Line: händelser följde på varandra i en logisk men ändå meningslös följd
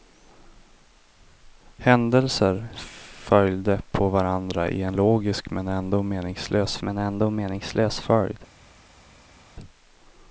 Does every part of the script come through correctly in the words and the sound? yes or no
no